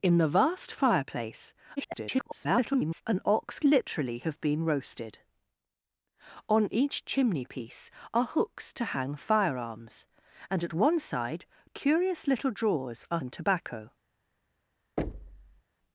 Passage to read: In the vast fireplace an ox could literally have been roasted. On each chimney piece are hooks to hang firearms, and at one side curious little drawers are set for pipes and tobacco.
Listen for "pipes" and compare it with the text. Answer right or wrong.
wrong